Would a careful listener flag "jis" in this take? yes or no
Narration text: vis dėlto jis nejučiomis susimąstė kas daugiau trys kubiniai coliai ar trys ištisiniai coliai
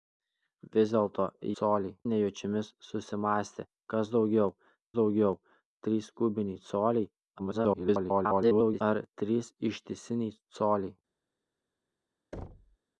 yes